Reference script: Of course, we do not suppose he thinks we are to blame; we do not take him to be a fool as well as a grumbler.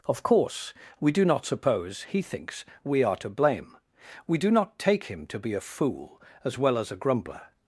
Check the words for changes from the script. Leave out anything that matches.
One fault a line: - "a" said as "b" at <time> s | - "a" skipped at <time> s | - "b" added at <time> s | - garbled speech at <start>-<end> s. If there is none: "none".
none